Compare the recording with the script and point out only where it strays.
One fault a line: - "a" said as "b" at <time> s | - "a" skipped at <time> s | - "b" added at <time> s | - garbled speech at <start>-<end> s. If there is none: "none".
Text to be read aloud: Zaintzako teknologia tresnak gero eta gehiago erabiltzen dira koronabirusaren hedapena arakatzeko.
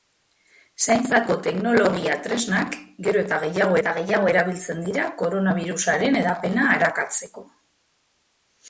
- "eta gehiago" added at 3.8 s